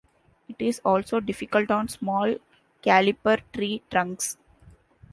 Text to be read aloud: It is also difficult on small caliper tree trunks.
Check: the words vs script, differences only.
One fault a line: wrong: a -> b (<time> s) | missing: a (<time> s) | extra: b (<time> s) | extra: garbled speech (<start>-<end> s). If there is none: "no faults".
no faults